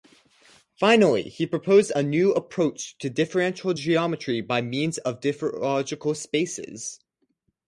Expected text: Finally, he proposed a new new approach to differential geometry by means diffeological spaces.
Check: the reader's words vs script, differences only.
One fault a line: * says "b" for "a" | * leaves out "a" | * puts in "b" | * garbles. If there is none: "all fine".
* leaves out "new"
* puts in "of"